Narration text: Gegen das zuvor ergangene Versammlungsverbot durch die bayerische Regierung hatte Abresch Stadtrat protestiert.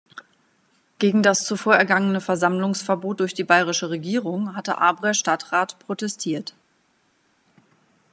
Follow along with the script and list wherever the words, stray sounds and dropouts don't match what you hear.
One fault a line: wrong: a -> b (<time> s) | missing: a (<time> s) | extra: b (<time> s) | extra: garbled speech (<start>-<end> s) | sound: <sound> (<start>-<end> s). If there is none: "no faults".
no faults